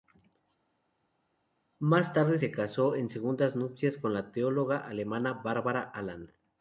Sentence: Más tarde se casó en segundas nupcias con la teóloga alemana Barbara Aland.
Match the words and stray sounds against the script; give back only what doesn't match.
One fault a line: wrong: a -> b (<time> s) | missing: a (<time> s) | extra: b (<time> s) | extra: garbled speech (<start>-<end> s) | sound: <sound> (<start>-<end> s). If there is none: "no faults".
no faults